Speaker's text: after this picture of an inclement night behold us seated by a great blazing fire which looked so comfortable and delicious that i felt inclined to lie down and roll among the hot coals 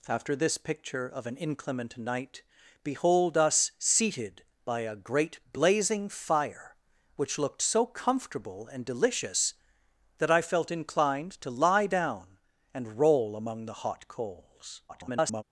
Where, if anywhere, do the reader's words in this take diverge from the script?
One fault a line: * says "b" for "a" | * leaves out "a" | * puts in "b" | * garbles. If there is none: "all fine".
* garbles